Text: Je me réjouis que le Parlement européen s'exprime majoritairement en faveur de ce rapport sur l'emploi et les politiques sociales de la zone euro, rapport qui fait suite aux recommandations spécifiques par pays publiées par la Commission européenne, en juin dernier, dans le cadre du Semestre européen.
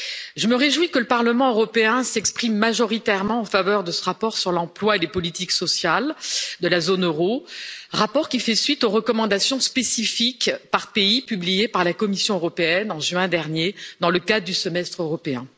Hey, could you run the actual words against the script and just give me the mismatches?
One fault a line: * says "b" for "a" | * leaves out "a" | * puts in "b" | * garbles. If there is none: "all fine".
all fine